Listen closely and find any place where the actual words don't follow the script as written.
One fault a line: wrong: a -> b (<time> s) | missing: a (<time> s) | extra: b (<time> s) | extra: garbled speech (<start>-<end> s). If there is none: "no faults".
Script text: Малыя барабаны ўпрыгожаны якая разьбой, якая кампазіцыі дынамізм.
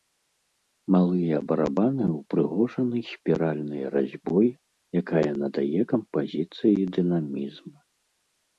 wrong: якая -> спіральнай (3.1 s)
extra: надае (5.4 s)